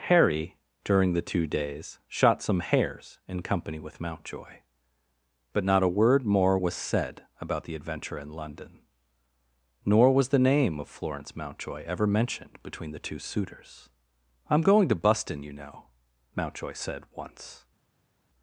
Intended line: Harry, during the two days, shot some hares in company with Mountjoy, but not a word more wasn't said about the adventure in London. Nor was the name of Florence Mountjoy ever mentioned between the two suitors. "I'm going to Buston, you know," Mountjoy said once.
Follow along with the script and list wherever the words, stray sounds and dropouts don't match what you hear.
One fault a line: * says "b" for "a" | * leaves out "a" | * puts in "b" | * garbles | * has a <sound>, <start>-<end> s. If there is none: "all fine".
* says "was" for "wasn't"